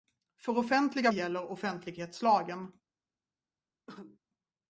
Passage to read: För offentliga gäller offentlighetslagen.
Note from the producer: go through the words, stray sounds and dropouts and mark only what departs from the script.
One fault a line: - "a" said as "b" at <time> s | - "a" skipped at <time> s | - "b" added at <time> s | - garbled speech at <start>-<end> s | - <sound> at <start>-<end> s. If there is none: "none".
- cough at 3.9-4.2 s